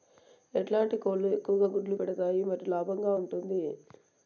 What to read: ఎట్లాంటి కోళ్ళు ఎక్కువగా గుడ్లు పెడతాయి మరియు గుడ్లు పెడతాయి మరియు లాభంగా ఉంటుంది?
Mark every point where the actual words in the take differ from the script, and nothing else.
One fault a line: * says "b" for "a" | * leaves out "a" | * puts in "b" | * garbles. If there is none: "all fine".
* leaves out "గుడ్లు పెడతాయి మరియు"